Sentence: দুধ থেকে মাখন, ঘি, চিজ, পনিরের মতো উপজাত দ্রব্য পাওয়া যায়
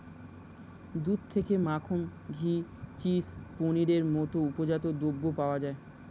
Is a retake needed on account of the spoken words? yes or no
no